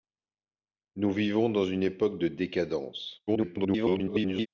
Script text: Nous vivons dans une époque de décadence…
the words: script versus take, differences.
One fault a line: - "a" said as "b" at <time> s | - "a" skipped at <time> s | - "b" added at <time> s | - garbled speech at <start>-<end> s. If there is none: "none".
- garbled speech at 3.3-4.5 s